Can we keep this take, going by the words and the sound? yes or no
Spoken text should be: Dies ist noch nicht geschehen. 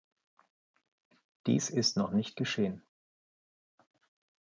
yes